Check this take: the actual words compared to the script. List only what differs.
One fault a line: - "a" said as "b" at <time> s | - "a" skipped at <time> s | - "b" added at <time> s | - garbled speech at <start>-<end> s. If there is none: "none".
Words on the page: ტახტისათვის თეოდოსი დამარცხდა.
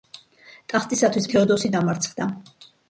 none